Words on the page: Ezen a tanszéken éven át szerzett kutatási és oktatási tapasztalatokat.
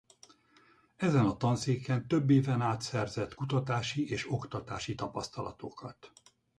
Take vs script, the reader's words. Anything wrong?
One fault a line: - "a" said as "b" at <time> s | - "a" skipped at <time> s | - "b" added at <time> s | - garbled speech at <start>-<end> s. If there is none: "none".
- "több" added at 2.1 s